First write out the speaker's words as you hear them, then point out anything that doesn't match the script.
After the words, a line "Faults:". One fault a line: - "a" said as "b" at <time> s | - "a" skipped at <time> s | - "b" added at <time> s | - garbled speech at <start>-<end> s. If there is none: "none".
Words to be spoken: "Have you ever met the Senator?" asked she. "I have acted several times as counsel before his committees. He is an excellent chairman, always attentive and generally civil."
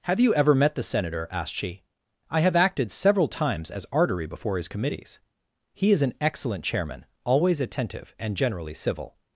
"Have you ever met the Senator?" asked she. "I have acted several times as artery before his committees. He is an excellent chairman, always attentive and generally civil."
Faults:
- "counsel" said as "artery" at 3.9 s